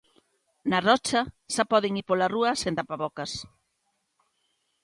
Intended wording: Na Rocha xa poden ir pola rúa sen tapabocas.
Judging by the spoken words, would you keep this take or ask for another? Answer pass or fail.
pass